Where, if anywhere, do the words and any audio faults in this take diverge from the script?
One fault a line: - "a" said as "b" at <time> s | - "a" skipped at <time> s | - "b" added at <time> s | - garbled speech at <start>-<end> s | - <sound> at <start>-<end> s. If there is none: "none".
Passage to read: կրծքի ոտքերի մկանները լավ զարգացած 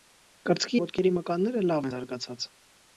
none